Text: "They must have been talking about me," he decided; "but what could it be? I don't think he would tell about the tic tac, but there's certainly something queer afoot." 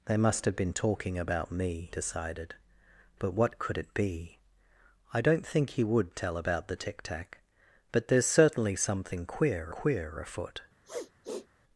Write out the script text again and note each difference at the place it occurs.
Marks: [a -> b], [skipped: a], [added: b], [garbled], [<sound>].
"They must have been talking about me," [skipped: he] decided; "but what could it be? I don't think he would tell about the tic tac, but there's certainly something queer [added: queer] afoot." [sniff]